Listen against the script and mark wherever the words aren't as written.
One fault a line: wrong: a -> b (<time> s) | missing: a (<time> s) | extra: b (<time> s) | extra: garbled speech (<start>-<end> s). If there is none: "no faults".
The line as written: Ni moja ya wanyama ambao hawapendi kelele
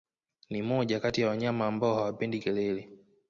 extra: kati (1.0 s)